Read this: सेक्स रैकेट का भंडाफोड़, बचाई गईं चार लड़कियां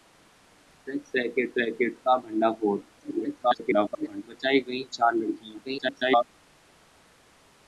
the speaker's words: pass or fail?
fail